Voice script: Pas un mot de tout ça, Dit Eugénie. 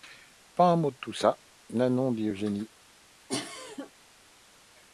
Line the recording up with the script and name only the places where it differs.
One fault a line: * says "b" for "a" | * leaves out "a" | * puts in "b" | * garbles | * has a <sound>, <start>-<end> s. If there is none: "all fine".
* puts in "Nanon"
* has a cough, 3.3-3.9 s